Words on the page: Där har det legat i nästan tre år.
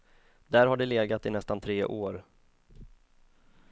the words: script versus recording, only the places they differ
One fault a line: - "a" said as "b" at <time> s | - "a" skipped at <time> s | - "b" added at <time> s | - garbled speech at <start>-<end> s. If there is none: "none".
none